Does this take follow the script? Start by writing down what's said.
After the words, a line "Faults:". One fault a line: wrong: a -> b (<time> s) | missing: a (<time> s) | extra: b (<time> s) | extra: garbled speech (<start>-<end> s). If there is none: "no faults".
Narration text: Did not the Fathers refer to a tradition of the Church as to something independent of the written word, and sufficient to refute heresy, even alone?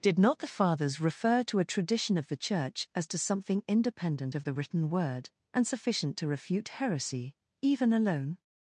Did not the Fathers refer to a tradition of the Church as to something independent of the written word, and sufficient to refute heresy, even alone?
Faults:
no faults